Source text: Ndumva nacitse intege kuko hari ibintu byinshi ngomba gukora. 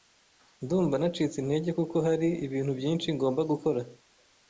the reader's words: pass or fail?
pass